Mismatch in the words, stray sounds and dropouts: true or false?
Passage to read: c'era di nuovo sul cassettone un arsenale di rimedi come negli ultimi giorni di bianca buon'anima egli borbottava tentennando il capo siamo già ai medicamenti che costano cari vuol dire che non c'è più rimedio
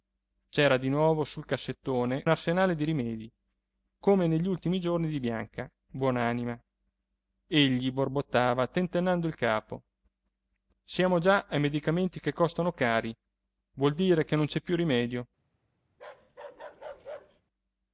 true